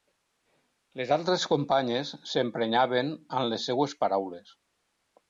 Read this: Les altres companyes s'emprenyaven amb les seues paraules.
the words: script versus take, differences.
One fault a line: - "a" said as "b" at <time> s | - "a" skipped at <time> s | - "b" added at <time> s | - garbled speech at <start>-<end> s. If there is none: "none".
none